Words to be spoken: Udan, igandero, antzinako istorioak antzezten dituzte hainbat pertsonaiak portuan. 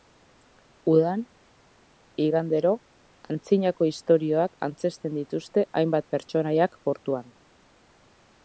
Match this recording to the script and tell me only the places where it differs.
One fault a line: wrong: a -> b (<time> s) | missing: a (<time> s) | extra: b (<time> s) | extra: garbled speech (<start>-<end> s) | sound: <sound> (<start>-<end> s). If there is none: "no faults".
no faults